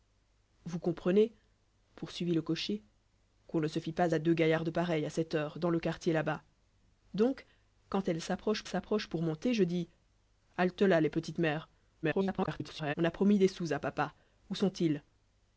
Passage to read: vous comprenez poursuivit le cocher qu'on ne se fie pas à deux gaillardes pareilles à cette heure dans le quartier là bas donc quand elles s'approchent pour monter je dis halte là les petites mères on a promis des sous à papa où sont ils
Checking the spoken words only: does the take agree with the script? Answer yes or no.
no